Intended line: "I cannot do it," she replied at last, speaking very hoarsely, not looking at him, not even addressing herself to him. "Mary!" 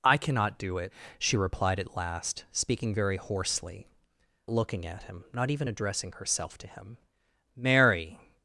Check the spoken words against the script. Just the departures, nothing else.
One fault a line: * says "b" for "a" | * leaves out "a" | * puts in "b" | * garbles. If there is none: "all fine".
* leaves out "not"